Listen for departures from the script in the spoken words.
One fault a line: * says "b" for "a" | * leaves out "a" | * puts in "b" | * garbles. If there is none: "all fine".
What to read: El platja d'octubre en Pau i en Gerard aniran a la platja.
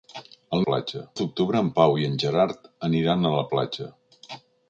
all fine